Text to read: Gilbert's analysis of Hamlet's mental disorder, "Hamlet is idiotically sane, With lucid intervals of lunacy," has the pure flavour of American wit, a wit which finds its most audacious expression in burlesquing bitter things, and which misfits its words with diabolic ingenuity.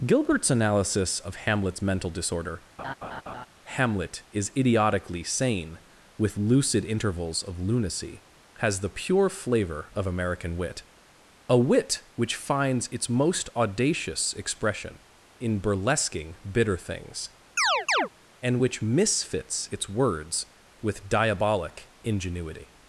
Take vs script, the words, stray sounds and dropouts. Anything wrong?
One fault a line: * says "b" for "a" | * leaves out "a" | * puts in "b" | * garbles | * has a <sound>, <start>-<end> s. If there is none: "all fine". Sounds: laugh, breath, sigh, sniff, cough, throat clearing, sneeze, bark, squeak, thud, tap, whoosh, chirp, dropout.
* has a laugh, 2.8-3.5 s
* has a chirp, 17.6-18.1 s